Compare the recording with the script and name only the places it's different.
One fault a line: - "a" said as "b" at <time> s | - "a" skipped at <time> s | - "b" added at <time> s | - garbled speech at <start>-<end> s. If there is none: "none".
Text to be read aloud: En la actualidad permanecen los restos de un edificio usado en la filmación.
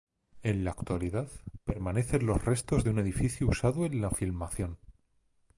none